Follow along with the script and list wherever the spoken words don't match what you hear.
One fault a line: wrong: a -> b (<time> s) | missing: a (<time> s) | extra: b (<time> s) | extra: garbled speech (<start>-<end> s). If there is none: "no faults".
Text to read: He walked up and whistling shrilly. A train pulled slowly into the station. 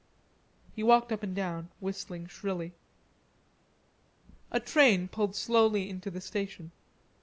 extra: down (1.4 s)